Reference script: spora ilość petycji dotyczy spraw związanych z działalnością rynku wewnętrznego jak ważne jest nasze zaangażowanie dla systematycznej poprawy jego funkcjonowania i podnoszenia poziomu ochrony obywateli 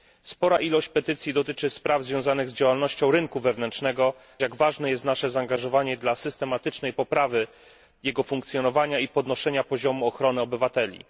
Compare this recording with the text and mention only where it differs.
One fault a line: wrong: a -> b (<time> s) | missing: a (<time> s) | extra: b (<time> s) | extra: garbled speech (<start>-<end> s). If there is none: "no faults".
no faults